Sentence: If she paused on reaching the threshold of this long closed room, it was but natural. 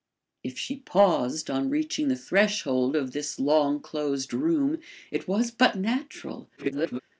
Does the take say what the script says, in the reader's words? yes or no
no